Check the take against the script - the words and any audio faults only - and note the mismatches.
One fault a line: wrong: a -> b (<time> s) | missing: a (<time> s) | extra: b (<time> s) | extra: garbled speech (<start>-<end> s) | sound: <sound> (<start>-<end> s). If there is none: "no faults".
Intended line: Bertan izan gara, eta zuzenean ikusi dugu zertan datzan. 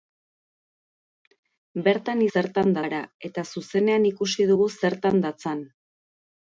wrong: izan -> zertan (2.4 s)